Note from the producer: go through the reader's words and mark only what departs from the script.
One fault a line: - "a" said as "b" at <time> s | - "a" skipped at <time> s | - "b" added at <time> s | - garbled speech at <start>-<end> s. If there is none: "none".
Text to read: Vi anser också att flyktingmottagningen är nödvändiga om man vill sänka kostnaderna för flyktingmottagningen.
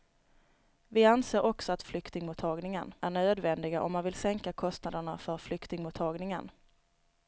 none